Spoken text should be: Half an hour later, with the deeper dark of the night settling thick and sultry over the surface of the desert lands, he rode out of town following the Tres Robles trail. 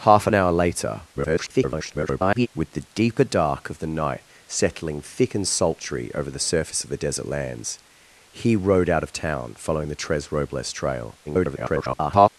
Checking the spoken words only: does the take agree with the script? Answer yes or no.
no